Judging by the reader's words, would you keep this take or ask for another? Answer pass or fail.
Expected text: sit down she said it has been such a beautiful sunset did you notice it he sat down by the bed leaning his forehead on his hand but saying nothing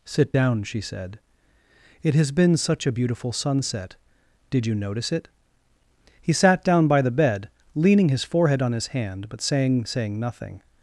fail